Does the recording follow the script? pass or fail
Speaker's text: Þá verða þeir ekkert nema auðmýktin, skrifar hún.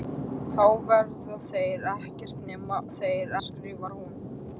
fail